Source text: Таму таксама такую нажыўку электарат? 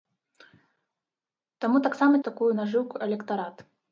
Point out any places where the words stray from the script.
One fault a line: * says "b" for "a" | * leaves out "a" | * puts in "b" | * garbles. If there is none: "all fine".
all fine